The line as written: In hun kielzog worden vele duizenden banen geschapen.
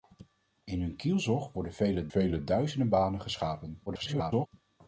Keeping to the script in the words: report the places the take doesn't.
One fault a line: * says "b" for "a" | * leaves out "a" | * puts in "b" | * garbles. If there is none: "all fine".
* puts in "vele"
* garbles